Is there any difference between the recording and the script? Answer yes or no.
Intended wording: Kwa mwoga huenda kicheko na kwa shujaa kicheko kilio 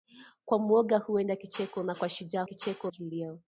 no